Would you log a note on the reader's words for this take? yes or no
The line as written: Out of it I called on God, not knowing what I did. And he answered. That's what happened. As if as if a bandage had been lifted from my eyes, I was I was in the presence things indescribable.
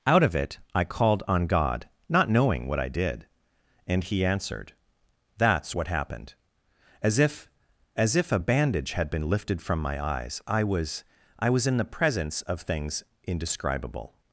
yes